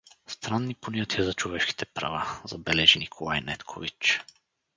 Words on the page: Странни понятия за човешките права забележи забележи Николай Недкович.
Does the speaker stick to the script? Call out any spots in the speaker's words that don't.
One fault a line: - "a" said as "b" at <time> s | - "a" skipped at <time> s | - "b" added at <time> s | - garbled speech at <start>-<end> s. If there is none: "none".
- "забележи" skipped at 3.0 s